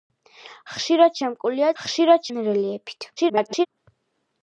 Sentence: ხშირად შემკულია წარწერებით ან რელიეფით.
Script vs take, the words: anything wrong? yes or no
yes